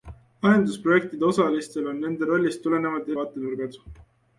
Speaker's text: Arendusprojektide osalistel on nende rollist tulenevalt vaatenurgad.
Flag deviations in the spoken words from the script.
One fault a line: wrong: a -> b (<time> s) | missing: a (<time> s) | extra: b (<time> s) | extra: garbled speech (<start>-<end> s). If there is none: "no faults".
no faults